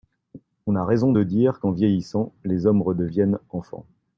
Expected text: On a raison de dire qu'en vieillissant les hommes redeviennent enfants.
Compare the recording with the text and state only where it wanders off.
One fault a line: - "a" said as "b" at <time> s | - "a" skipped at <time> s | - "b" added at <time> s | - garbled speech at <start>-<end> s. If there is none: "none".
none